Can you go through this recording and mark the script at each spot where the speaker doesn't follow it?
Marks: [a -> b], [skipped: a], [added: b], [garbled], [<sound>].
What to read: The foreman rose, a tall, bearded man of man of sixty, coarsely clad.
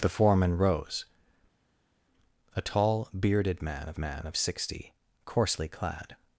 The foreman rose, a tall, bearded man of man of sixty, coarsely clad.